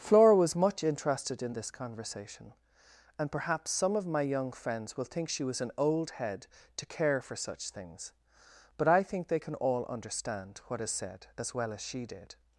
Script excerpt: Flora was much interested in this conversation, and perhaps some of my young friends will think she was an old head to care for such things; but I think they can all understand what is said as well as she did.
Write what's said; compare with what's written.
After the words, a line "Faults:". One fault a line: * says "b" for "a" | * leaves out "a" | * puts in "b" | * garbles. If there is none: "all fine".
Flora was much interested in this conversation, and perhaps some of my young friends will think she was an old head to care for such things; but I think they can all understand what is said as well as she did.
Faults:
all fine